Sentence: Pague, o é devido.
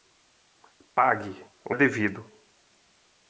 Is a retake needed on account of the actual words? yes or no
no